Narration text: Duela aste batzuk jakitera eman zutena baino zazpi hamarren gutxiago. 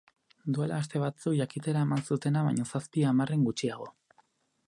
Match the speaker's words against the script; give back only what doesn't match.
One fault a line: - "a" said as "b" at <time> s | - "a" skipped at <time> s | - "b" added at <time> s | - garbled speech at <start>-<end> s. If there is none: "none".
none